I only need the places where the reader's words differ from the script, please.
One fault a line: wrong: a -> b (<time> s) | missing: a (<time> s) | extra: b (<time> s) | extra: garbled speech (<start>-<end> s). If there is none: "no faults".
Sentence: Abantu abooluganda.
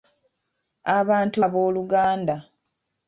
no faults